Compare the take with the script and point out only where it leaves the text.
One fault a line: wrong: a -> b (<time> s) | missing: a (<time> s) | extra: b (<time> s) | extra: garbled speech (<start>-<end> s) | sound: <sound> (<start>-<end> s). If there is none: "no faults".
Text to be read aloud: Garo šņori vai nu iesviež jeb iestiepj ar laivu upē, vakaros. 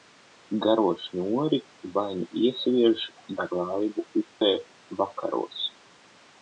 missing: jeb iestiepj (3.0 s)
sound: dropout (4.3-4.4 s)